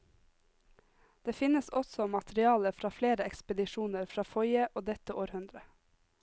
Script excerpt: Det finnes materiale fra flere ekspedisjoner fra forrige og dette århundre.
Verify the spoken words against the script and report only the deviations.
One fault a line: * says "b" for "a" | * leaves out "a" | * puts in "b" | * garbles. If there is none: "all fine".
* puts in "også"